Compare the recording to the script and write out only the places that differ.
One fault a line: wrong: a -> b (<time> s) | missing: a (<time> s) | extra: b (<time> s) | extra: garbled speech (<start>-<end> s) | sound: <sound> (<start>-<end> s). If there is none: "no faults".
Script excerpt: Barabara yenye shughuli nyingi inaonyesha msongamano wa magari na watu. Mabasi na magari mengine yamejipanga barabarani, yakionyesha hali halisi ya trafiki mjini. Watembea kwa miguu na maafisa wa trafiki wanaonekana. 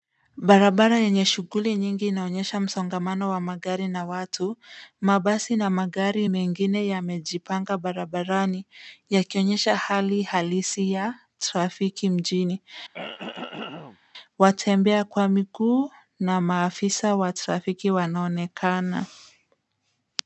sound: throat clearing (12.9-14.0 s)